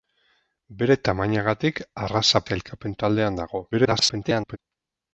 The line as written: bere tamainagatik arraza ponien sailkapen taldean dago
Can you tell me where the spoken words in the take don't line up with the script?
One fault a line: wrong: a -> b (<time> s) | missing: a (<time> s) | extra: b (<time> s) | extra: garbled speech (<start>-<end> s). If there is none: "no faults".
missing: ponien (2.4 s)
extra: garbled speech (3.7-4.6 s)